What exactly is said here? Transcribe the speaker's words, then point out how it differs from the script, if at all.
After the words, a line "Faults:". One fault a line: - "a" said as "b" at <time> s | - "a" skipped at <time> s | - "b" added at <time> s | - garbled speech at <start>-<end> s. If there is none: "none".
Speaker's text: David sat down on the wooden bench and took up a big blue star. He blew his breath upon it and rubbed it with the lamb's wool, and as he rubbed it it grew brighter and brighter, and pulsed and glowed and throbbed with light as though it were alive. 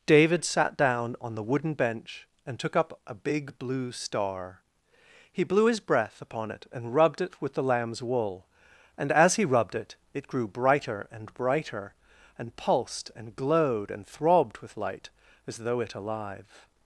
David sat down on the wooden bench and took up a big blue star. He blew his breath upon it and rubbed it with the lamb's wool, and as he rubbed it it grew brighter and brighter, and pulsed and glowed and throbbed with light as though it alive.
Faults:
- "were" skipped at 15.9 s